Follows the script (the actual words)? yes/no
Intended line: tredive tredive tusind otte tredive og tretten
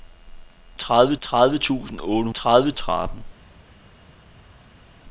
yes